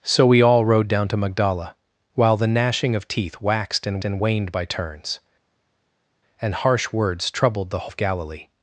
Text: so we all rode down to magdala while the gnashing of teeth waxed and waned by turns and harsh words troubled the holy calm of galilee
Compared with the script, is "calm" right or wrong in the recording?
wrong